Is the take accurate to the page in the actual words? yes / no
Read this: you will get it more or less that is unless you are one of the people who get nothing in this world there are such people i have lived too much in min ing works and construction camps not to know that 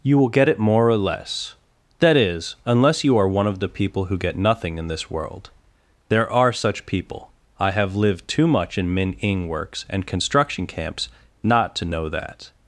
yes